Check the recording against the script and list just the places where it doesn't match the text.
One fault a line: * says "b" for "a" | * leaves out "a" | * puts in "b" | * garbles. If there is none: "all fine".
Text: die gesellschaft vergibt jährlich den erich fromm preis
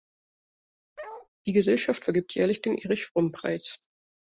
all fine